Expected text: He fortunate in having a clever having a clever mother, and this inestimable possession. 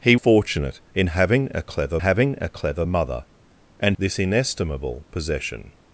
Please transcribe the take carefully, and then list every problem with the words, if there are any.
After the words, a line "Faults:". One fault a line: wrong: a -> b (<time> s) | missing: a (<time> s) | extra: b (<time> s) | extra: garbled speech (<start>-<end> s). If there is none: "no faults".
He fortunate in having a clever having a clever mother, and this inestimable possession.
Faults:
no faults